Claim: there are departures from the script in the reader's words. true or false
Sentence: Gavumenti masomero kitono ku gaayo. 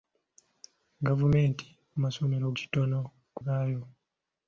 false